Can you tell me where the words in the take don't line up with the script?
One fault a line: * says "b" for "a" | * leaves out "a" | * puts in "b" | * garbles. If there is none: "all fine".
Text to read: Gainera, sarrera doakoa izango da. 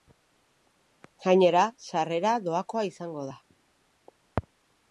all fine